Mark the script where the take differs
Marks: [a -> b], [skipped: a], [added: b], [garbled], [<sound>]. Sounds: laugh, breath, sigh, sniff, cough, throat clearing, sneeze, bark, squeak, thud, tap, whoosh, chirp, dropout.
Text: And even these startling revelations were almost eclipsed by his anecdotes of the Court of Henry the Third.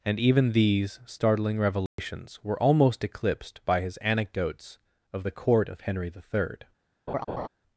And even these startling revelations [dropout] were almost eclipsed by his anecdotes of the Court of Henry the Third. [laugh]